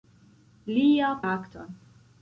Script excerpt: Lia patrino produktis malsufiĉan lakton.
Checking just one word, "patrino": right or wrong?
wrong